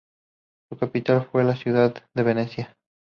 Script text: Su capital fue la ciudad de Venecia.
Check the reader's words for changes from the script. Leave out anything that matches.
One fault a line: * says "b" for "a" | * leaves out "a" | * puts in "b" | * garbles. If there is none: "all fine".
all fine